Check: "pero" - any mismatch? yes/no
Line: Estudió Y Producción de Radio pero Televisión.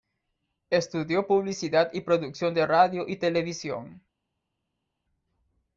yes